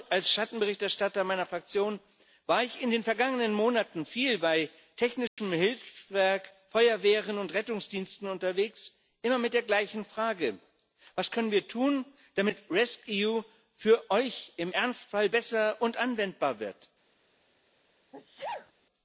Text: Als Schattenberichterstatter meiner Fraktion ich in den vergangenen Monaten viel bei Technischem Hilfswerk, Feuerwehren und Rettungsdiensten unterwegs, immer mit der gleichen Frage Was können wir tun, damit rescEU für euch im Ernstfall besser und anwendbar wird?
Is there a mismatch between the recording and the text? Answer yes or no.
yes